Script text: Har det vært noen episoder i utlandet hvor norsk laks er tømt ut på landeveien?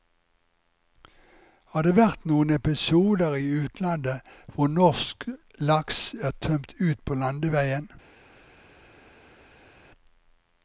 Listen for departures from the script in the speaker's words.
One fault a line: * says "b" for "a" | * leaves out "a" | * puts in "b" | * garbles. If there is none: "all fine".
all fine